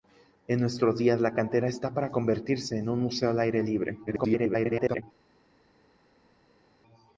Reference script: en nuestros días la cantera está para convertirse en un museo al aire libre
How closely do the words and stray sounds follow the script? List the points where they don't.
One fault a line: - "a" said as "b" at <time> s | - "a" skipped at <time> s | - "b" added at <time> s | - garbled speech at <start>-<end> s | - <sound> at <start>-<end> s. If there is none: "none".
- garbled speech at 4.1-5.0 s